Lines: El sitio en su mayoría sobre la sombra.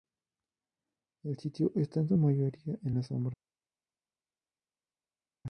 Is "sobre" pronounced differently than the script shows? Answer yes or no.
yes